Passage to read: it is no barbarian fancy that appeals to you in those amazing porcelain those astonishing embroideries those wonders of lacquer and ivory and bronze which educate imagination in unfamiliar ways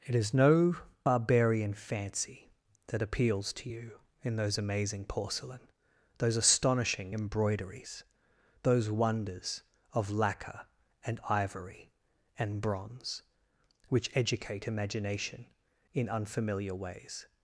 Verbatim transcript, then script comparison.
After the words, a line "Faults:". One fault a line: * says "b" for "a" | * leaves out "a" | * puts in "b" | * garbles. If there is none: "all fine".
it is no barbarian fancy that appeals to you in those amazing porcelain those astonishing embroideries those wonders of lacquer and ivory and bronze which educate imagination in unfamiliar ways
Faults:
all fine